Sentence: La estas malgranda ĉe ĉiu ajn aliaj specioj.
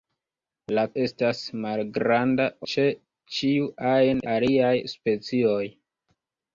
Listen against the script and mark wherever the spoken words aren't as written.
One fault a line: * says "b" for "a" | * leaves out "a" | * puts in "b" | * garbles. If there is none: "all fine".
all fine